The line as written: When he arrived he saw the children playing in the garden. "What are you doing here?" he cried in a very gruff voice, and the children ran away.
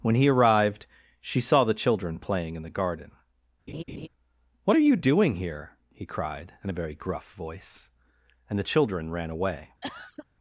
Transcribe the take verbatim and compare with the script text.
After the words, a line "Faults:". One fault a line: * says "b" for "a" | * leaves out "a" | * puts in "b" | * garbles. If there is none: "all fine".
When he arrived she saw the children playing in the garden. "What are you doing here?" he cried in a very gruff voice, and the children ran away.
Faults:
* says "she" for "he"